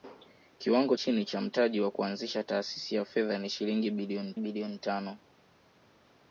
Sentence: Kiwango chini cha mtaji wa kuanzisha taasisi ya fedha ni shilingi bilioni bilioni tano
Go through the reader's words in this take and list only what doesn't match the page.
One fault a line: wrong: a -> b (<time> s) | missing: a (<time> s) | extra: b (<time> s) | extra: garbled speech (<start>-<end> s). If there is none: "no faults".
no faults